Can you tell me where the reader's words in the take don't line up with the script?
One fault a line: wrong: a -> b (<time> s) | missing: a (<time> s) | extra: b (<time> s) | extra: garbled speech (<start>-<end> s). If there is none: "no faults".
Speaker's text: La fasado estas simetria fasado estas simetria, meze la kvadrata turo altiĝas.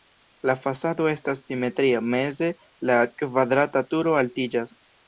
missing: fasado estas simetria (2.0 s)